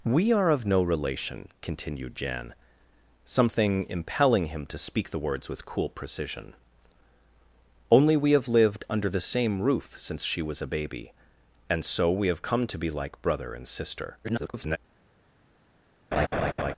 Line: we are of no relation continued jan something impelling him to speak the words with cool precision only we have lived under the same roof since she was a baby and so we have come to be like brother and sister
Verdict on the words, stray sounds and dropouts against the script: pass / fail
fail